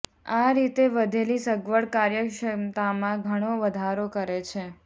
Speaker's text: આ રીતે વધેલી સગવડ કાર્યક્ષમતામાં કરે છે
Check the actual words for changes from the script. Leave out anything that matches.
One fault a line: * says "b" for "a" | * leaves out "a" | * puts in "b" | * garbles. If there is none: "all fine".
* puts in "ઘણો વધારો"